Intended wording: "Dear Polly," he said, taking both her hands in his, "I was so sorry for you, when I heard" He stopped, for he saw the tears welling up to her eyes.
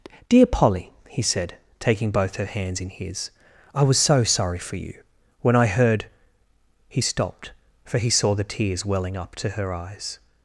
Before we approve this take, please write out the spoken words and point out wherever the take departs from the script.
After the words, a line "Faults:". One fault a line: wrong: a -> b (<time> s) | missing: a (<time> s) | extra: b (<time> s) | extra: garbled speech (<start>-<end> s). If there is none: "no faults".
"Dear Polly," he said, taking both her hands in his, "I was so sorry for you, when I heard" He stopped, for he saw the tears welling up to her eyes.
Faults:
no faults